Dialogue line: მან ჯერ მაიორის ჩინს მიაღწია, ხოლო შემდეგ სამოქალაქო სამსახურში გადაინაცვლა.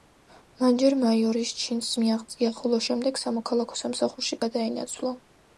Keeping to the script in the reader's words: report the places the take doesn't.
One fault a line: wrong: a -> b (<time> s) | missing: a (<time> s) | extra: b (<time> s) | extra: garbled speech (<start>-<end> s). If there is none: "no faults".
no faults